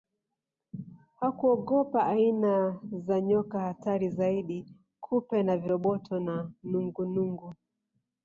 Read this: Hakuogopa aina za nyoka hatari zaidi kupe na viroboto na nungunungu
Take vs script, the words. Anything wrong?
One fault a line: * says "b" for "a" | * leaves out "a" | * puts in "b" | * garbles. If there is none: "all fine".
all fine